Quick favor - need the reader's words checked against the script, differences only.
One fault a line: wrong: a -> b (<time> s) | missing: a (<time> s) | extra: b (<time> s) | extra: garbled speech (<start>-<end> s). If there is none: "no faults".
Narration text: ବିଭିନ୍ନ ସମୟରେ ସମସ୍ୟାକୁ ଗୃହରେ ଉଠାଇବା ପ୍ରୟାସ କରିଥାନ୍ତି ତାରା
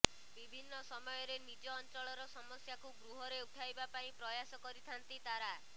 extra: ନିଜ ଅଞ୍ଚଳର (1.4 s)
extra: ପାଇଁ (3.9 s)